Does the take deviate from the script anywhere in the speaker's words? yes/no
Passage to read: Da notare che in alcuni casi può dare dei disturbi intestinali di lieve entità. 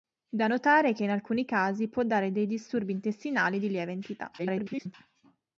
yes